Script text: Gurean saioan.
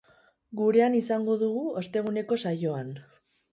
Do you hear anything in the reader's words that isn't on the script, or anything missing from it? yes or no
yes